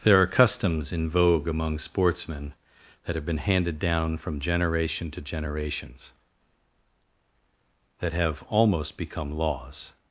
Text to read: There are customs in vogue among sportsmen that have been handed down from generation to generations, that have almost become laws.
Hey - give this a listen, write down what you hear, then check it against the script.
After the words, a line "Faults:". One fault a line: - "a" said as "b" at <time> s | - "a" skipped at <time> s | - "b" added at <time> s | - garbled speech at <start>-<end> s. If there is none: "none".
There are customs in vogue among sportsmen that have been handed down from generation to generations, that have almost become laws.
Faults:
none